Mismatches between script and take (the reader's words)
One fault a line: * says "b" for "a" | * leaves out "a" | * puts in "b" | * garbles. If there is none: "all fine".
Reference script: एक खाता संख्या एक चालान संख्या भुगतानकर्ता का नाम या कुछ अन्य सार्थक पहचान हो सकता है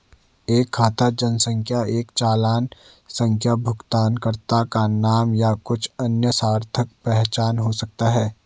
all fine